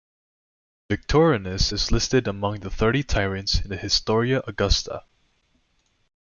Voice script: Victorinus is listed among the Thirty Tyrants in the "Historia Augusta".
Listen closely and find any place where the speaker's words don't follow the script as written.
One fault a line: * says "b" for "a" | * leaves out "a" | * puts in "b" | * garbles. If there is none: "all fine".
all fine